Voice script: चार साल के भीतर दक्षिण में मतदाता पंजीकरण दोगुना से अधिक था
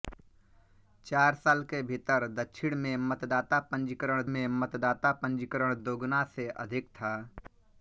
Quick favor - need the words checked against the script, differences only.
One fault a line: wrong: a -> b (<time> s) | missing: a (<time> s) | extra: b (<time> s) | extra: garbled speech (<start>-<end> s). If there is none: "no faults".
extra: में मतदाता पंजीकरण (4.3 s)